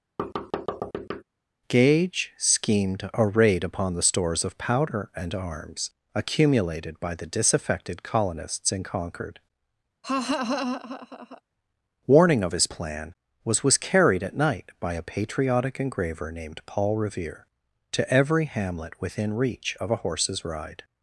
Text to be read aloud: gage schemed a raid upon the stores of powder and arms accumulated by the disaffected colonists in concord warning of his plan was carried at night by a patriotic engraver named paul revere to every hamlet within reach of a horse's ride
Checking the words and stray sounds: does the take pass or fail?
fail